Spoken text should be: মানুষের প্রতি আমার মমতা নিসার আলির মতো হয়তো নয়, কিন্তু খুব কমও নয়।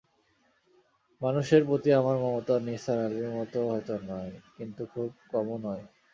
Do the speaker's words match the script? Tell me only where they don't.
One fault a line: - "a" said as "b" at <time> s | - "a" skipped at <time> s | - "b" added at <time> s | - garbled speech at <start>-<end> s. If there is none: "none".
none